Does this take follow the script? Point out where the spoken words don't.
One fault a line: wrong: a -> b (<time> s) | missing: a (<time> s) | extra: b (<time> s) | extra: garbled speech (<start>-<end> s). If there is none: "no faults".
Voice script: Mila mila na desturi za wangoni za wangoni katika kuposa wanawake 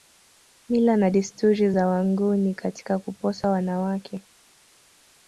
missing: mila (1.0 s)
missing: za wangoni (2.5 s)